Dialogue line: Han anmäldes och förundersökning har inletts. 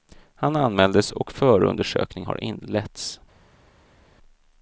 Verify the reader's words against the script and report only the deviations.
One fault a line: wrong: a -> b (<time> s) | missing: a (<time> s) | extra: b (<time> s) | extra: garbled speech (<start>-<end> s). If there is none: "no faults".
no faults